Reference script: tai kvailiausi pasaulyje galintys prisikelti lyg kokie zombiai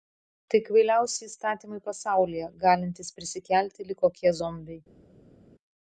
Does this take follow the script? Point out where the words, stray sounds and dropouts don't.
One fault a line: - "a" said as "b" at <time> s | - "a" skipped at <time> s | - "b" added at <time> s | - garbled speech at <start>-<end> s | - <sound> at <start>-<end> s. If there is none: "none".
- "įstatymai" added at 1.3 s